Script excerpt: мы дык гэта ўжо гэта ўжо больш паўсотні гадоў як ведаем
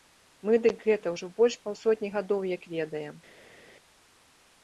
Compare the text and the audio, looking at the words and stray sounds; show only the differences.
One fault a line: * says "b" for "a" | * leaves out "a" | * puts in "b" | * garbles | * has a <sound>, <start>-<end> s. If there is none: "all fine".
* leaves out "гэта ўжо"